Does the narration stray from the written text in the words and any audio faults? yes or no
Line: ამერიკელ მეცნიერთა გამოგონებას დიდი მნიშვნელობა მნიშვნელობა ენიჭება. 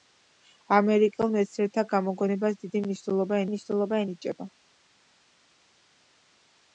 no